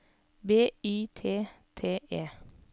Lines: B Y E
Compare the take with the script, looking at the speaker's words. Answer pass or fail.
fail